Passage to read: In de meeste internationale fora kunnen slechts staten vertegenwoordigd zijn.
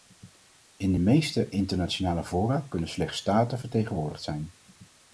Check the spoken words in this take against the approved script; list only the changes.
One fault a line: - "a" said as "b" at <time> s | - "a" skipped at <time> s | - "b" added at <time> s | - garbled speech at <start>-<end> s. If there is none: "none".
none